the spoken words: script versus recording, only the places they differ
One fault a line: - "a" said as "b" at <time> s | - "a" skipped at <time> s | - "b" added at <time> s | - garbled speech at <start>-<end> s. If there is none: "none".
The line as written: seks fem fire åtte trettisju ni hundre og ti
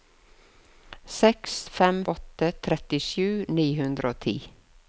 - "fire" skipped at 2.0 s